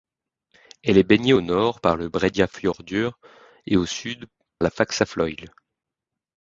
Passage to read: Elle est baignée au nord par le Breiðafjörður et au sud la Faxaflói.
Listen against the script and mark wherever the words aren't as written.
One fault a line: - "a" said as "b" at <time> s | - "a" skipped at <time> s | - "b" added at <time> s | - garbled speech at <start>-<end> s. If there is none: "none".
none